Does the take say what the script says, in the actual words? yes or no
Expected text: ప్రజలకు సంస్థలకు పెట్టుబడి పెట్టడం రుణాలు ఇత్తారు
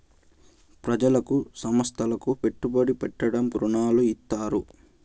yes